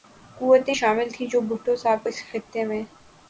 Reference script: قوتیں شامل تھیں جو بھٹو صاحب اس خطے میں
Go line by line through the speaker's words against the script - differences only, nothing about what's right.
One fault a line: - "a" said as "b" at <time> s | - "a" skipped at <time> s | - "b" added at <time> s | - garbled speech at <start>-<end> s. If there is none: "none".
none